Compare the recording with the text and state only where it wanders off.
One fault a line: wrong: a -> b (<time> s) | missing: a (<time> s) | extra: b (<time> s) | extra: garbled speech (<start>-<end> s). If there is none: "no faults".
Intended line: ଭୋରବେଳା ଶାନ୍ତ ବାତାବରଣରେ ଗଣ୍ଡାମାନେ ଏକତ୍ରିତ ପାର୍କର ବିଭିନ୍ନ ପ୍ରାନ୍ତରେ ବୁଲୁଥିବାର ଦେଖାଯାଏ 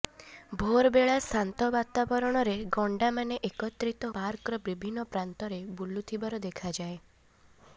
no faults